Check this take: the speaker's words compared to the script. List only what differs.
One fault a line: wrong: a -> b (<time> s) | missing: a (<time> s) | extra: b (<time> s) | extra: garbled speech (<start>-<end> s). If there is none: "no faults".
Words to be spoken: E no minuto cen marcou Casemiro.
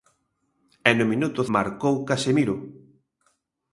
missing: cen (1.4 s)